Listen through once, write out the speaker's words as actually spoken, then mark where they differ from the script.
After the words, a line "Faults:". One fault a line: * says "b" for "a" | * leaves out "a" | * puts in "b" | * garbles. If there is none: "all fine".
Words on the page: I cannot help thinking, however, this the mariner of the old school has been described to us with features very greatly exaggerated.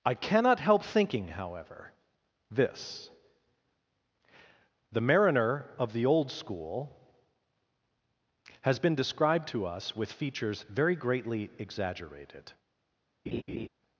I cannot help thinking, however, this the mariner of the old school has been described to us with features very greatly exaggerated.
Faults:
all fine